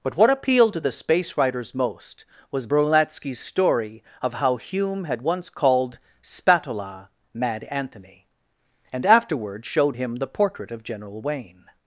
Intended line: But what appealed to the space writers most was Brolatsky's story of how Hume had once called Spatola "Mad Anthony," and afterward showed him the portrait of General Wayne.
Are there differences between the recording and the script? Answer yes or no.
no